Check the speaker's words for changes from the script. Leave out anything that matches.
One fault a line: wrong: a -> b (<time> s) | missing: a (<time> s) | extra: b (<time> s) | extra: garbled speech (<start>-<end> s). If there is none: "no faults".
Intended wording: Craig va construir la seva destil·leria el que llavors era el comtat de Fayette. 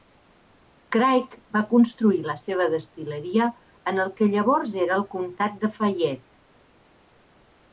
extra: en (3.9 s)